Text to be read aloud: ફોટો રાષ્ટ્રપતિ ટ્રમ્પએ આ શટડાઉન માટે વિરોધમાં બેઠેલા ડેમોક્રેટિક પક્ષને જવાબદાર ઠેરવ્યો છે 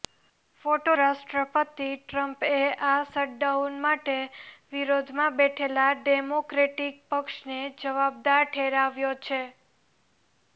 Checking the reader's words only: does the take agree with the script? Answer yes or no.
yes